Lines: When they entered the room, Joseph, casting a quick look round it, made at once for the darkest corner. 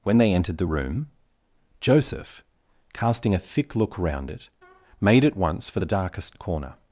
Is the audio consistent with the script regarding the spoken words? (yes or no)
no